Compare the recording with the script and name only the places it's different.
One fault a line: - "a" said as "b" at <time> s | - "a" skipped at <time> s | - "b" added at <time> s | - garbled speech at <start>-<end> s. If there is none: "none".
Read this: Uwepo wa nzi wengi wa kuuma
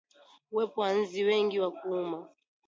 none